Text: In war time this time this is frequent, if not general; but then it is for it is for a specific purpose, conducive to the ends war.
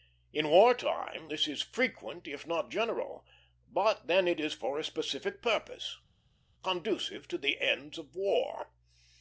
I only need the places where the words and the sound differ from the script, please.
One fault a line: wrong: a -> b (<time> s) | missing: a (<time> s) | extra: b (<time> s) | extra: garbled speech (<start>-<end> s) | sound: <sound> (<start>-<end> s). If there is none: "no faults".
missing: time this (1.4 s)
missing: it is for (4.8 s)
extra: of (8.0 s)